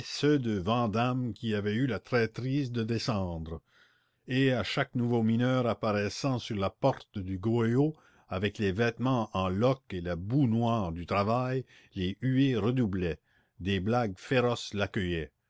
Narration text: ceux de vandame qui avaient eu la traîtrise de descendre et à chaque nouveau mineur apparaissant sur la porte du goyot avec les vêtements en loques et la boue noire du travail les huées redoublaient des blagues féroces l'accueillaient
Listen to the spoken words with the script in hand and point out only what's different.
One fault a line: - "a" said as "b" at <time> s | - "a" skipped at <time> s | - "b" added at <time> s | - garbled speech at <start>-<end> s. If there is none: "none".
none